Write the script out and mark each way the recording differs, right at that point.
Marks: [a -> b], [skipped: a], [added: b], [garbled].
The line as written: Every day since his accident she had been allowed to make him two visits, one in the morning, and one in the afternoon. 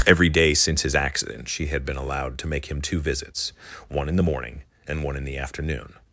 Every day since his accident she had been allowed to make him two visits, one in the morning, and one in the afternoon.